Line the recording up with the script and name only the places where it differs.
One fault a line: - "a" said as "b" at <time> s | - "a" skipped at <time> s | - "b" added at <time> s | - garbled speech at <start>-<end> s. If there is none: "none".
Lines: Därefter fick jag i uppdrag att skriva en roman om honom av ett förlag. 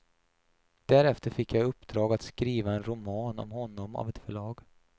none